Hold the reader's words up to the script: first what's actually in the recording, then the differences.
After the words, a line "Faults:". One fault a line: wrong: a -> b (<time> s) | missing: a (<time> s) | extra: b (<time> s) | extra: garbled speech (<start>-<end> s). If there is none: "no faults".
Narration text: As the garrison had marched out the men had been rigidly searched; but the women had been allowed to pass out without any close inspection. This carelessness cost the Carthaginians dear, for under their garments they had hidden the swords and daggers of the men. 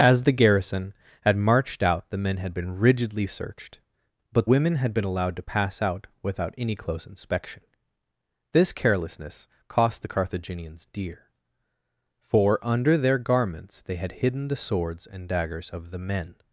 As the garrison had marched out the men had been rigidly searched; but women had been allowed to pass out without any close inspection. This carelessness cost the Carthaginians dear, for under their garments they had hidden the swords and daggers of the men.
Faults:
missing: the (4.5 s)